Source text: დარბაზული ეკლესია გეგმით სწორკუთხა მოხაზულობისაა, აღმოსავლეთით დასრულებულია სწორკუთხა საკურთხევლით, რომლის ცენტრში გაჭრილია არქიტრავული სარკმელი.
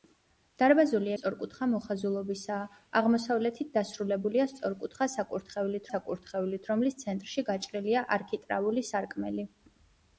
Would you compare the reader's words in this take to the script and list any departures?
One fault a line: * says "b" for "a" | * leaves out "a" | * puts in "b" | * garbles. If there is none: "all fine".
* leaves out "ეკლესია გეგმით"
* puts in "საკურთხევლით"